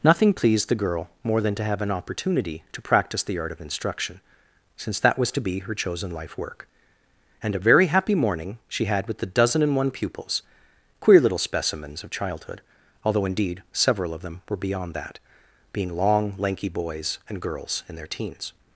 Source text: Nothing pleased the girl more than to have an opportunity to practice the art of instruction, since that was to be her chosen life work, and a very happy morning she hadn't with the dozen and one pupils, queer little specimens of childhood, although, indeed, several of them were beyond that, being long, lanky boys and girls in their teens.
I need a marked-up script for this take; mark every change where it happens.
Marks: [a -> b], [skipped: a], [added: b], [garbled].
Nothing pleased the girl more than to have an opportunity to practice the art of instruction, since that was to be her chosen life work, and a very happy morning she [hadn't -> had] with the dozen and one pupils, queer little specimens of childhood, although, indeed, several of them were beyond that, being long, lanky boys and girls in their teens.